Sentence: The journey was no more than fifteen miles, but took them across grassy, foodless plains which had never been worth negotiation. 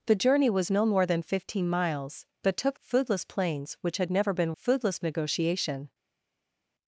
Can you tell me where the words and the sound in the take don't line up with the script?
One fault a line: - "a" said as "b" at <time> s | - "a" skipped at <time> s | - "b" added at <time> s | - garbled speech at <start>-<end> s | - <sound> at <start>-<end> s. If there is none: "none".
- "them across grassy" skipped at 2.8 s
- "worth" said as "foodless" at 4.6 s